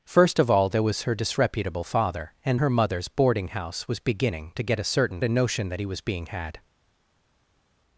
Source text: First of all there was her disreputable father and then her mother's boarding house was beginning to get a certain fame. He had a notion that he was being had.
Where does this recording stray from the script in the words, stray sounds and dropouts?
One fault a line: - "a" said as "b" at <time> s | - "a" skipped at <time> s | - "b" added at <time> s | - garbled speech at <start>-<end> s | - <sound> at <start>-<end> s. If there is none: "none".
- "then" skipped at 2.6 s
- "fame He had" skipped at 5.2 s